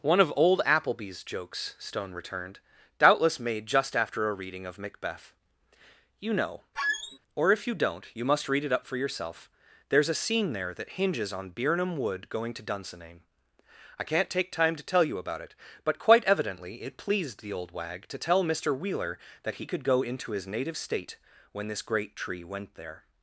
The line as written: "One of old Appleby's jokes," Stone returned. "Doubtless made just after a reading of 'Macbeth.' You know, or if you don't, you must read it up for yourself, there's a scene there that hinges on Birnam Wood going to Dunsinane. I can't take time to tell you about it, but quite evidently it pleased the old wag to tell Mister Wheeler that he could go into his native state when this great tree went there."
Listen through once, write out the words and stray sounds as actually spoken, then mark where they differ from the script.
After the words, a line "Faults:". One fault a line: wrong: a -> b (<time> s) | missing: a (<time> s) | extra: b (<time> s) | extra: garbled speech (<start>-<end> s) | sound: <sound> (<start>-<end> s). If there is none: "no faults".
"One of old Appleby's jokes," Stone returned. "Doubtless made just after a reading of 'Macbeth.' You know, or if you don't, you must read it up for yourself, there's a scene there that hinges on Birnam Wood going to Dunsinane. I can't take time to tell you about it, but quite evidently it pleased the old wag to tell Mister Wheeler that he could go into his native state when this great tree went there."
Faults:
sound: squeak (6.7-7.2 s)